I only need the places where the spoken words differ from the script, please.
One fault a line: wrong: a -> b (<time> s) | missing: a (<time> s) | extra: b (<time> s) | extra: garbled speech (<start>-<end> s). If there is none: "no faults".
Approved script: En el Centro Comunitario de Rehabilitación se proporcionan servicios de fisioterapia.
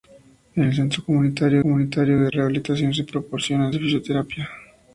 extra: Comunitario (1.6 s)
missing: servicios (3.7 s)